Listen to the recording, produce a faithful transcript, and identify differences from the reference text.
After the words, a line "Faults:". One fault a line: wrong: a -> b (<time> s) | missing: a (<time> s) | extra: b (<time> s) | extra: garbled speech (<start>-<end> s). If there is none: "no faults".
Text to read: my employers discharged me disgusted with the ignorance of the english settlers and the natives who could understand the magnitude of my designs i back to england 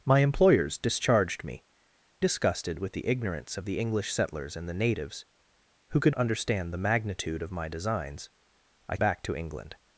my employers discharged me disgusted with the ignorance of the english settlers and the natives who could understand the magnitude of my designs i back to england
Faults:
no faults